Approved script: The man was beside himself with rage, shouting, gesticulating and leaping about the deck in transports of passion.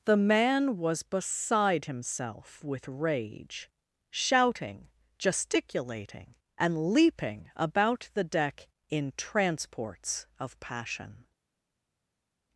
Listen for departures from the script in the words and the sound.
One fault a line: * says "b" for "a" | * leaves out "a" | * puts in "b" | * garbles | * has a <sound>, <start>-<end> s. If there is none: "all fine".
all fine